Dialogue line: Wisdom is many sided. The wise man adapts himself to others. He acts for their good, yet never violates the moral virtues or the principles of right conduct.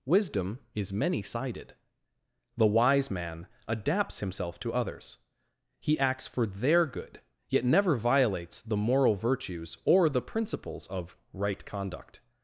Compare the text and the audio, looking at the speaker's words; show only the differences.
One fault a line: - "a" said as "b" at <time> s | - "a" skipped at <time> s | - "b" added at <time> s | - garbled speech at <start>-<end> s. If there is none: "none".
none